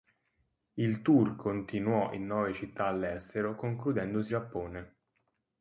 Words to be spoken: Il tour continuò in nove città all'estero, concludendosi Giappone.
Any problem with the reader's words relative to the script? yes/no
no